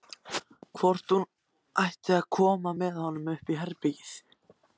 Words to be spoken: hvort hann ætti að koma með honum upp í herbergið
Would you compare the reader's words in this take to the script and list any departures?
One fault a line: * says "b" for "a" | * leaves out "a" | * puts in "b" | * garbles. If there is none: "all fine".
* says "hún" for "hann"